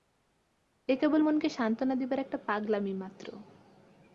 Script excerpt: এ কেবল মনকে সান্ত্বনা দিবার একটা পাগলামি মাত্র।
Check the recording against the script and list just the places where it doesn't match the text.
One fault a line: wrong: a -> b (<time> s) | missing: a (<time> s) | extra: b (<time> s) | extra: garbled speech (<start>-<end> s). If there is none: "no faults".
no faults